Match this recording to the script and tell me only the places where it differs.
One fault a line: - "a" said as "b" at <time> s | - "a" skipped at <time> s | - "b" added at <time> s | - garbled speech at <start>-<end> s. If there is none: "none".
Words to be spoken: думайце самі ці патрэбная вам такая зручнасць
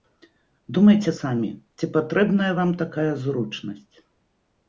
none